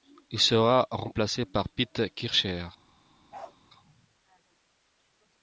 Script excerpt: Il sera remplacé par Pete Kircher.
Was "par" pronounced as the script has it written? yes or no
yes